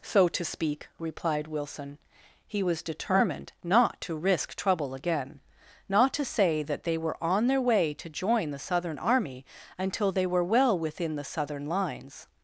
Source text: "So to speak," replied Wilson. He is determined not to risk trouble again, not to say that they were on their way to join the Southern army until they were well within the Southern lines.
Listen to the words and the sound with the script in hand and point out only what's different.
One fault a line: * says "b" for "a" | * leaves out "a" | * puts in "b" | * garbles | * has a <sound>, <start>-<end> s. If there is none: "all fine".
* says "was" for "is"